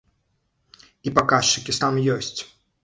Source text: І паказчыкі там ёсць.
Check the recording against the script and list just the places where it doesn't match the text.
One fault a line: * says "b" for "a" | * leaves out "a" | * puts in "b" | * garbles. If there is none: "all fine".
all fine